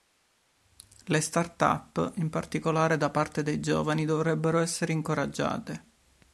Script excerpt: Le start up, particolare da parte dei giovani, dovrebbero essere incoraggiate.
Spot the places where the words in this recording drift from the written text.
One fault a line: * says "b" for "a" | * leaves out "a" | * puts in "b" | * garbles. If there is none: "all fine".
* puts in "in"